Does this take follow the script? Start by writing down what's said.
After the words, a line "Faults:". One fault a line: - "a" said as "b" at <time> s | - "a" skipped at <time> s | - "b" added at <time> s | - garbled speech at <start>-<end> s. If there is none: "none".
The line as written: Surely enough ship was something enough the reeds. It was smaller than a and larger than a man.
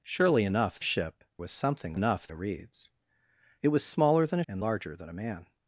Surely enough ship was something enough the reeds. It was smaller than a and larger than a man.
Faults:
none